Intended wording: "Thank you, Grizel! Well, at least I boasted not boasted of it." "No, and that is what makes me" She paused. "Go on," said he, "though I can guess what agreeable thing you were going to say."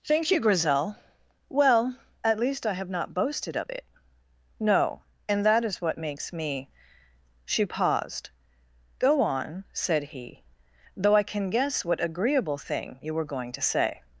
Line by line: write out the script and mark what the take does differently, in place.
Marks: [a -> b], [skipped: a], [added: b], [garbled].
"Thank you, Grizel! Well, at least I [boasted -> have] not boasted of it." "No, and that is what makes me" She paused. "Go on," said he, "though I can guess what agreeable thing you were going to say."